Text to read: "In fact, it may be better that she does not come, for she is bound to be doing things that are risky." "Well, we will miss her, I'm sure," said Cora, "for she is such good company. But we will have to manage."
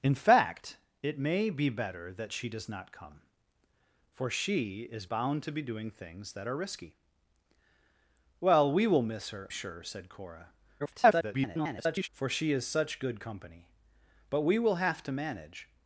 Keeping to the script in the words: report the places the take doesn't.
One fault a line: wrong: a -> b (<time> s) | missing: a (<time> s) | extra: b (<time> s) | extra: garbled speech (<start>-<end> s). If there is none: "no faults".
missing: I'm (9.5 s)
extra: garbled speech (10.8-12.1 s)